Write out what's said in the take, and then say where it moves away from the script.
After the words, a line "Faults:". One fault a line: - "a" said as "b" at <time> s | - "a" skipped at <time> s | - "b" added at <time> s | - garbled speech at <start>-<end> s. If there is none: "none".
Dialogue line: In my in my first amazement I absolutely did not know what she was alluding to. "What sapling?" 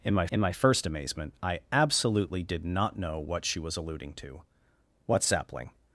In my in my first amazement I absolutely did not know what she was alluding to. "What sapling?"
Faults:
none